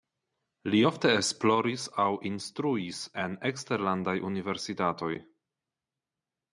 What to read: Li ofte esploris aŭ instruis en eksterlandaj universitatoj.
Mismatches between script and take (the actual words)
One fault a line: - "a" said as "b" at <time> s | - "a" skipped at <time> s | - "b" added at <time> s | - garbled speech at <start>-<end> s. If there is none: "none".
none